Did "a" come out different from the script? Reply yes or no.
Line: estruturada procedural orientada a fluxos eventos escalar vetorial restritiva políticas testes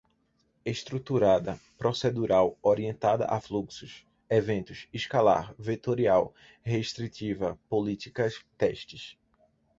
no